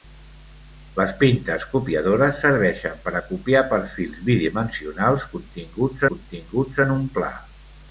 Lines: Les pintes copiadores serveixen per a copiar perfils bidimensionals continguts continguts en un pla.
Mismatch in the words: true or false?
false